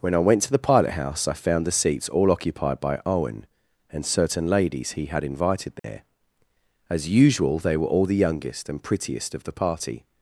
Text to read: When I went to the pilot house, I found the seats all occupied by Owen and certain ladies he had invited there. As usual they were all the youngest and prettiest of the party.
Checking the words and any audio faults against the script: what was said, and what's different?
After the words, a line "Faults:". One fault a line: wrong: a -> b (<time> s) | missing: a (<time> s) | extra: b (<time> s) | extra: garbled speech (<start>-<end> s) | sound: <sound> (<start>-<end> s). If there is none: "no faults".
When I went to the pilot house, I found the seats all occupied by Owen and certain ladies he had invited there. As usual they were all the youngest and prettiest of the party.
Faults:
sound: dropout (5.8-5.8 s)